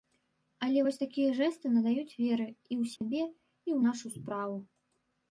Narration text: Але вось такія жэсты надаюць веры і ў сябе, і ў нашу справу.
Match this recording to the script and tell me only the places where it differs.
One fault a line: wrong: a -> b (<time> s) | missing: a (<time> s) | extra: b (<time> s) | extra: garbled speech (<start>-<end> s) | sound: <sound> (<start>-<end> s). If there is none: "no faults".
sound: dropout (3.0-3.0 s)